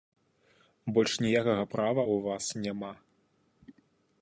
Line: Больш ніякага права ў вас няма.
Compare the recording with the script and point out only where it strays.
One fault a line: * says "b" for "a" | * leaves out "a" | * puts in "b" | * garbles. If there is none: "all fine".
all fine